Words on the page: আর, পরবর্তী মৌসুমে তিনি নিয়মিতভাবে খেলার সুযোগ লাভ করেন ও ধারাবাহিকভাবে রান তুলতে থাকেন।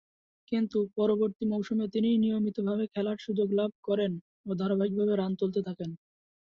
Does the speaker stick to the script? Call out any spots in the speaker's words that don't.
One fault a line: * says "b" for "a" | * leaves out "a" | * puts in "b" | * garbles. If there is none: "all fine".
* says "কিন্তু" for "আর"